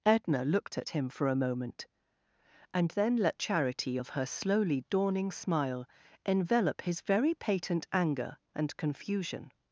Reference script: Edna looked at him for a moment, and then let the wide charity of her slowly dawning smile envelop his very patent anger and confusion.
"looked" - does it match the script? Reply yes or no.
yes